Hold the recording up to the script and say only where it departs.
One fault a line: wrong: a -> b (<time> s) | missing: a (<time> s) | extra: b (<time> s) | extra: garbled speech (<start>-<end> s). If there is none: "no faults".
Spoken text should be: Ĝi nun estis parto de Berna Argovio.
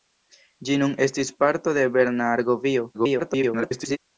extra: garbled speech (2.9-4.0 s)